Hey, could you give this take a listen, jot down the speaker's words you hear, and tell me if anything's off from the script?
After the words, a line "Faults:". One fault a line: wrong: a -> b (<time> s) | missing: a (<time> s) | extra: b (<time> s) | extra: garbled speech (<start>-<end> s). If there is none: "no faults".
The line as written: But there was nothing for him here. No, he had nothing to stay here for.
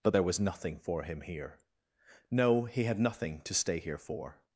But there was nothing for him here. No, he had nothing to stay here for.
Faults:
no faults